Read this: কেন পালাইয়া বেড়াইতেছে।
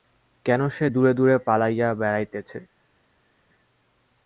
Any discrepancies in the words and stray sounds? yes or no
yes